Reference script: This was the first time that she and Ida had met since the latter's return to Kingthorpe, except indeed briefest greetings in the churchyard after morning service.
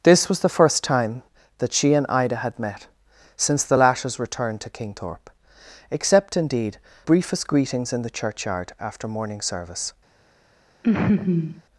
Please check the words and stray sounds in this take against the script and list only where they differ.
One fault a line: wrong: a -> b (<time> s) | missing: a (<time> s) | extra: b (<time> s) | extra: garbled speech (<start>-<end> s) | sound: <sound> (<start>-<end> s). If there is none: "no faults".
sound: laugh (10.8-11.6 s)